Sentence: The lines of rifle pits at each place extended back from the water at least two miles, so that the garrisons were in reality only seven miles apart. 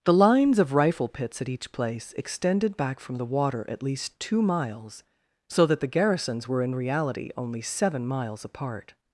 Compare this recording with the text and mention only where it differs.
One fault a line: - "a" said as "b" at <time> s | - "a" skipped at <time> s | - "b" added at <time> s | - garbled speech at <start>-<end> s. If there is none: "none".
none